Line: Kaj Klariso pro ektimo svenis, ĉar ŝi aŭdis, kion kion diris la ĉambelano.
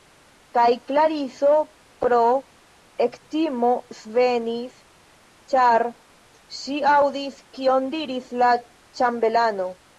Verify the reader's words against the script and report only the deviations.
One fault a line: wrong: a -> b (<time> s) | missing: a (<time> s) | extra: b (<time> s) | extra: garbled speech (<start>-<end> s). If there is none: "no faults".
missing: kion (8.0 s)